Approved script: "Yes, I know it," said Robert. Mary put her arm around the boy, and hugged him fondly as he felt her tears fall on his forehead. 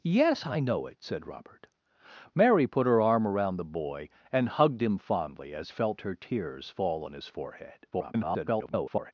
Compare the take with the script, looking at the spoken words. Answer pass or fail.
fail